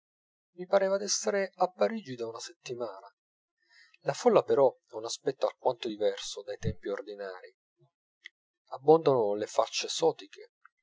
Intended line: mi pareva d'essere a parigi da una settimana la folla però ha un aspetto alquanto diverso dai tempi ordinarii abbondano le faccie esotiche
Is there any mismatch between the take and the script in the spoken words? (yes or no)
no